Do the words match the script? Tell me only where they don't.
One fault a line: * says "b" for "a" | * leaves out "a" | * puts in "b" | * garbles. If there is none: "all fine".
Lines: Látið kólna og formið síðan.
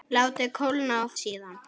* leaves out "formið"